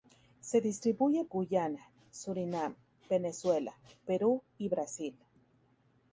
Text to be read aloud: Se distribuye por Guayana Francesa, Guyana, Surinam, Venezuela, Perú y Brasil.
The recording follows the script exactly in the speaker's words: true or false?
false